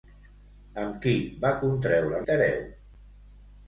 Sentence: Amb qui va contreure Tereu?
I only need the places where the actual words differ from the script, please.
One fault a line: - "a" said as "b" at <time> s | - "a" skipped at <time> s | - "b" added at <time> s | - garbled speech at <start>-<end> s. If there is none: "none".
none